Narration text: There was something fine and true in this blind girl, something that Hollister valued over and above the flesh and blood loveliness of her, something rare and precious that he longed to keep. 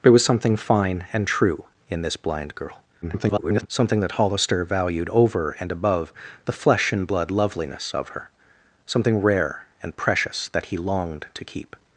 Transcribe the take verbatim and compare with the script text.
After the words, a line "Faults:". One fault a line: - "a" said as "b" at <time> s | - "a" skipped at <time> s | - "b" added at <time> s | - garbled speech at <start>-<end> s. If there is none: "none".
There was something fine and true in this blind girl, [garbled] something that Hollister valued over and above the flesh and blood loveliness of her, something rare and precious that he longed to keep.
Faults:
- garbled speech at 3.0-3.7 s